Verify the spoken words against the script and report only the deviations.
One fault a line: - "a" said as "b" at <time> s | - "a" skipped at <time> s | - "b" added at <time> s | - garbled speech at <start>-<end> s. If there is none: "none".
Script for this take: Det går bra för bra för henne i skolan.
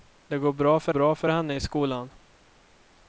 none